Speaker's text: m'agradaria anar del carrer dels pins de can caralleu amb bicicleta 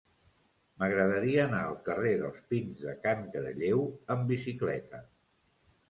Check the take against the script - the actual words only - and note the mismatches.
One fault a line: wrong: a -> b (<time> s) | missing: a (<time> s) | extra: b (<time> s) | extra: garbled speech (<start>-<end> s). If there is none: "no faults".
wrong: del -> al (1.6 s)